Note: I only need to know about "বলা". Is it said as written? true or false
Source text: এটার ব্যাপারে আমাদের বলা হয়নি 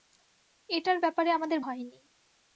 false